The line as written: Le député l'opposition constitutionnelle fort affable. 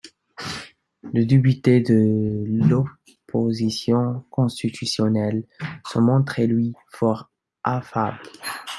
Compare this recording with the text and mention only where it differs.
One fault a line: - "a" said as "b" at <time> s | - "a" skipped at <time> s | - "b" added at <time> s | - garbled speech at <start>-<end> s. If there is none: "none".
- "de" added at 1.8 s
- "se montrait lui" added at 5.9 s